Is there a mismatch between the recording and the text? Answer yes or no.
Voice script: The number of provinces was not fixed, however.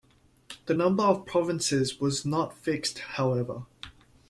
no